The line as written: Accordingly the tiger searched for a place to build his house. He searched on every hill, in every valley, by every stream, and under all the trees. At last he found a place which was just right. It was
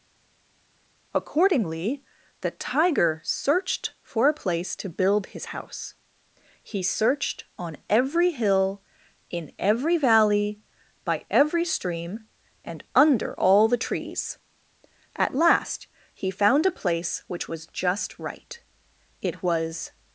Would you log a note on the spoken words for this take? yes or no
no